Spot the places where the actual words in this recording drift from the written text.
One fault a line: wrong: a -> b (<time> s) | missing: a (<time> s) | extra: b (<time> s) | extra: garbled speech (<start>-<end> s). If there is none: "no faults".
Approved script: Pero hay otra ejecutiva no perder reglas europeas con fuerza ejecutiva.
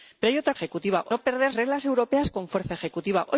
no faults